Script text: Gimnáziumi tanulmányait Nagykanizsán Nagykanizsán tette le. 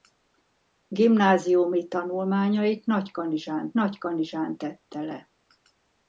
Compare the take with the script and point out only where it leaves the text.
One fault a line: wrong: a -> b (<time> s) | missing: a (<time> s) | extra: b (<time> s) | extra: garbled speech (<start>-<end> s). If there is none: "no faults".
no faults